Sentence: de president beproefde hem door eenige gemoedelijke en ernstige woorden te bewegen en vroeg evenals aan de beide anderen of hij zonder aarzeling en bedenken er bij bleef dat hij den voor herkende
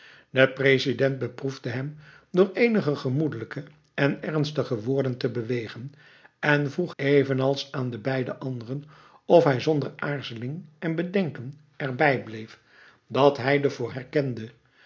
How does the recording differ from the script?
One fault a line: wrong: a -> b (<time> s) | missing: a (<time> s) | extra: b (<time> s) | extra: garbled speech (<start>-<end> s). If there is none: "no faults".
no faults